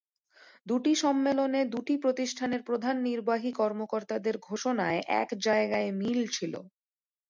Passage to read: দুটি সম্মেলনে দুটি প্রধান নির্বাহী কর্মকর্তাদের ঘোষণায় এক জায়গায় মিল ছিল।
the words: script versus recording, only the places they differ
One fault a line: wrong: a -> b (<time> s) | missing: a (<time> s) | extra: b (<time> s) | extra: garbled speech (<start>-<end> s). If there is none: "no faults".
extra: প্রতিষ্ঠানের (2.0 s)